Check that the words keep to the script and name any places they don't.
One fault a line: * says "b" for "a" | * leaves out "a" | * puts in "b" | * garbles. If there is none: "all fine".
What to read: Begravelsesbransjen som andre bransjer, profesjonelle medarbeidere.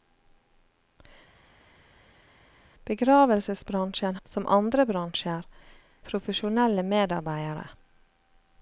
all fine